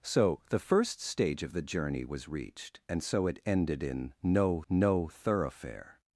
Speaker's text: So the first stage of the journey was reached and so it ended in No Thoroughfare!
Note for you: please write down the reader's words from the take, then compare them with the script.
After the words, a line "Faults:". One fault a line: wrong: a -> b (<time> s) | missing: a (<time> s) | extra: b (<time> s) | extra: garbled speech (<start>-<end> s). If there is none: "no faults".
So the first stage of the journey was reached and so it ended in No No Thoroughfare!
Faults:
extra: No (4.7 s)